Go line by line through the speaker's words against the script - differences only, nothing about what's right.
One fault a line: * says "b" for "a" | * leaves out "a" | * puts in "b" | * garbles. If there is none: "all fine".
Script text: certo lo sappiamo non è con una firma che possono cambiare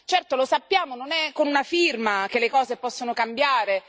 * puts in "le cose"